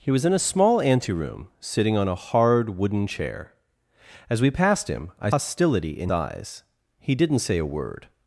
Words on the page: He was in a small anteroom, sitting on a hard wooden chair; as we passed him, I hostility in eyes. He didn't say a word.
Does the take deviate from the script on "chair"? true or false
false